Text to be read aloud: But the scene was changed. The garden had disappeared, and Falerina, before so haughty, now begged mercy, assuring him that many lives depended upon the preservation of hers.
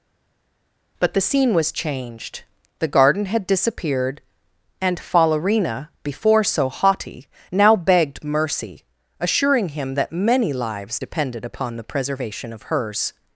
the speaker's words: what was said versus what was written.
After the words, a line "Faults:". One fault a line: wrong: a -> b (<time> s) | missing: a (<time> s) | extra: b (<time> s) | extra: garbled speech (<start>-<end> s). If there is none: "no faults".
But the scene was changed. The garden had disappeared, and Falerina, before so haughty, now begged mercy, assuring him that many lives depended upon the preservation of hers.
Faults:
no faults